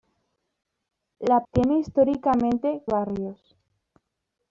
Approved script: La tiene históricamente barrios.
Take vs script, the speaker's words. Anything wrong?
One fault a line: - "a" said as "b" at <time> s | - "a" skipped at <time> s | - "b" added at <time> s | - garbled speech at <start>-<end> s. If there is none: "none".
none